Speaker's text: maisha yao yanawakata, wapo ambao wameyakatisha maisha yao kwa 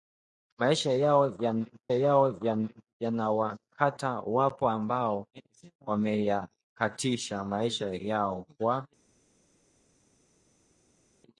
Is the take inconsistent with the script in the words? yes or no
yes